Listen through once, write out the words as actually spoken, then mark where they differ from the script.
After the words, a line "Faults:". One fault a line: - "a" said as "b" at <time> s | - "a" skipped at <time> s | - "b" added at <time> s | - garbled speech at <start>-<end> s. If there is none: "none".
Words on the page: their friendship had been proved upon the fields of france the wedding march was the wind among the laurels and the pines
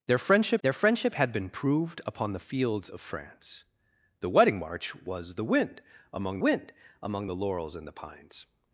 their friendship their friendship had been proved upon the fields of france the wedding march was the wind among wind among the laurels and the pines
Faults:
- "their friendship" added at 0.6 s
- "wind among" added at 6.4 s